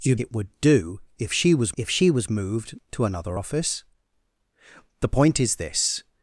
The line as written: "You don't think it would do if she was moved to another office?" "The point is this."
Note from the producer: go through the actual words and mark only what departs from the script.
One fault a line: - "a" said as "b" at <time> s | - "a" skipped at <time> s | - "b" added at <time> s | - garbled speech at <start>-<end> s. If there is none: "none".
- "don't think" skipped at 0.1 s
- "if she was" added at 1.8 s